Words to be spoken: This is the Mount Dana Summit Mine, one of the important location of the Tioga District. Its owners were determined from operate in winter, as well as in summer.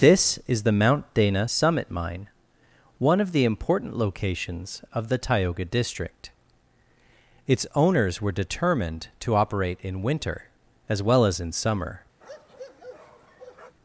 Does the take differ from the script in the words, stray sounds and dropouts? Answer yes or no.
yes